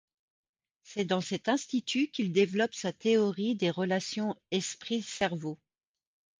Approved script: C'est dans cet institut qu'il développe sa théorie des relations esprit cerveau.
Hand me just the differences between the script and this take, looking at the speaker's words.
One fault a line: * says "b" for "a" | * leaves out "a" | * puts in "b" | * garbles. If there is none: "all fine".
all fine